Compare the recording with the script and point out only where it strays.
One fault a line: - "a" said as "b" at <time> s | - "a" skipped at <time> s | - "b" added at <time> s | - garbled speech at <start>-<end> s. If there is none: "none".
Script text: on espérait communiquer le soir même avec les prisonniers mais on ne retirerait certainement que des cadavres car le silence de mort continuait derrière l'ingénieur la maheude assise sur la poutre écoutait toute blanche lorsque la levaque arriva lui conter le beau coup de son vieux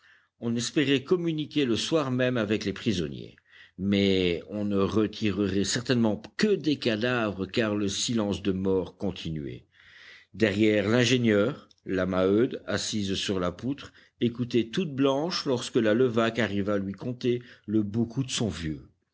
none